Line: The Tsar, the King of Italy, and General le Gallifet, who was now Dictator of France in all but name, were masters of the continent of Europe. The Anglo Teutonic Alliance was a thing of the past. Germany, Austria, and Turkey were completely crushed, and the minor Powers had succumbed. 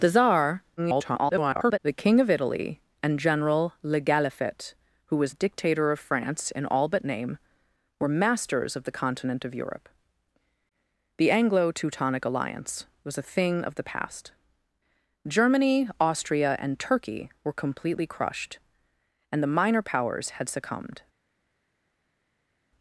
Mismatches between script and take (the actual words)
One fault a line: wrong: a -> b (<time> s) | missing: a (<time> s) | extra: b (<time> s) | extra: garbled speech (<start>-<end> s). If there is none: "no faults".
extra: garbled speech (0.8-1.8 s)
missing: now (5.3 s)